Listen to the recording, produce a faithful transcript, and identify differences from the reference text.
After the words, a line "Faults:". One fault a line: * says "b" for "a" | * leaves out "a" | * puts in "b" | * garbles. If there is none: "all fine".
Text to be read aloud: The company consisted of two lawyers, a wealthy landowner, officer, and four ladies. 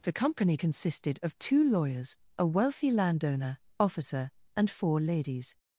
The company consisted of two lawyers, a wealthy landowner, officer, and four ladies.
Faults:
all fine